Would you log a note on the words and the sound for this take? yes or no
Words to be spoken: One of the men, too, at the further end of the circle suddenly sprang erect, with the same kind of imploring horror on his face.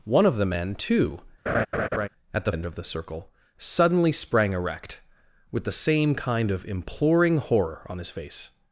yes